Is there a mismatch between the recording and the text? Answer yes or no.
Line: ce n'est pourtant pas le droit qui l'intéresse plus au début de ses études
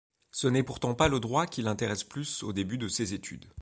no